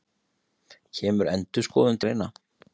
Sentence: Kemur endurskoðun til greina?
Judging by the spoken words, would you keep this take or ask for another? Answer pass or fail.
fail